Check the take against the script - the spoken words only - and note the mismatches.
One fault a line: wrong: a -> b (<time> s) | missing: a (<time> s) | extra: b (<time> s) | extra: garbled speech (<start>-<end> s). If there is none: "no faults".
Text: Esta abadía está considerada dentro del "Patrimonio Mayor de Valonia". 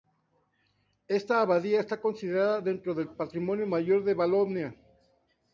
no faults